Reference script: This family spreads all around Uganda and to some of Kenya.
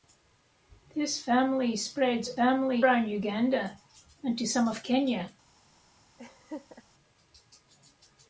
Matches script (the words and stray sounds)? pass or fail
fail